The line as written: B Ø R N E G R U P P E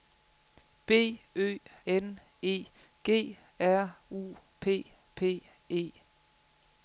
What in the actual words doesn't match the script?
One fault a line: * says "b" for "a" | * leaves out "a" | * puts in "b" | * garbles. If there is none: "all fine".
* leaves out "R"